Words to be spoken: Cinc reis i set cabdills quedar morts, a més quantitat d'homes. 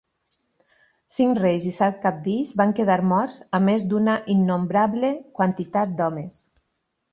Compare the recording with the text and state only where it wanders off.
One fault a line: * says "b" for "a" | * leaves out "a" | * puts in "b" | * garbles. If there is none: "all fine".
* puts in "van"
* puts in "d'una innombrable"